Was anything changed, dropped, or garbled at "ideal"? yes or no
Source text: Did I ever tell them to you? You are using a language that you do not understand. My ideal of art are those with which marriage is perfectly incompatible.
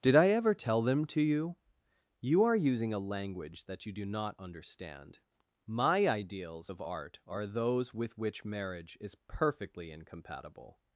yes